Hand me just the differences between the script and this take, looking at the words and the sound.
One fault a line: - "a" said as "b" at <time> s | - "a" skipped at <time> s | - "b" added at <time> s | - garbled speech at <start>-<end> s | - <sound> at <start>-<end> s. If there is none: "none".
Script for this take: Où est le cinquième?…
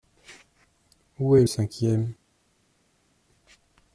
- "le" skipped at 1.4 s